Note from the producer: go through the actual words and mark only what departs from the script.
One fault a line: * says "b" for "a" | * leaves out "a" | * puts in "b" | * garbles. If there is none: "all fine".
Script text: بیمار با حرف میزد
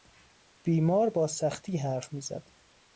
* puts in "سختی"